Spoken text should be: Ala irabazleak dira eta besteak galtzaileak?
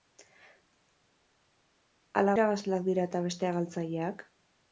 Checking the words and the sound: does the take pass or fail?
pass